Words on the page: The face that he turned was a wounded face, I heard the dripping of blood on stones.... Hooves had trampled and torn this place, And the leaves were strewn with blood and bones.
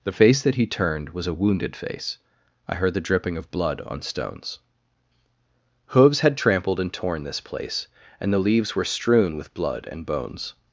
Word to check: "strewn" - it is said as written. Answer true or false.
true